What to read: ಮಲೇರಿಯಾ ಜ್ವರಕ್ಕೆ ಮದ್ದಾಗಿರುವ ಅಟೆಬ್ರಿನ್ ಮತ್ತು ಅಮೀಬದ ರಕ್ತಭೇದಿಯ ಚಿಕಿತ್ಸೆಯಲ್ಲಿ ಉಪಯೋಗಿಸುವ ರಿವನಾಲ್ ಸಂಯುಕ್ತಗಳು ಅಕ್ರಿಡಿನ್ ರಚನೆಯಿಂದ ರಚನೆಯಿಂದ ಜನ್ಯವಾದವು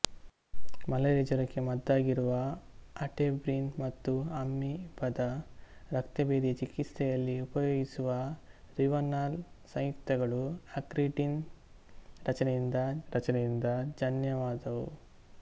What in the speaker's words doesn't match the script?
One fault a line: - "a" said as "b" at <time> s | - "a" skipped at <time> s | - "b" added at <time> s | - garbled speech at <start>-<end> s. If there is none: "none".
none